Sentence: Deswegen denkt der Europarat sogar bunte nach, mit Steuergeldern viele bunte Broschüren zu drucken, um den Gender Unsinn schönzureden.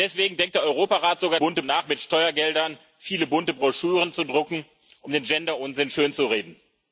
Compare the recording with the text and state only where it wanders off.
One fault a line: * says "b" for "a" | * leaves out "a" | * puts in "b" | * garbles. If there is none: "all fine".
all fine